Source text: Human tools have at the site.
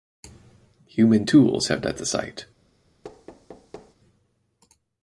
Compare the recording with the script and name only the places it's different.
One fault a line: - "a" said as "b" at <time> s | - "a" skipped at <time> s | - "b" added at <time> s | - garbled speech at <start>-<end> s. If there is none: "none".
none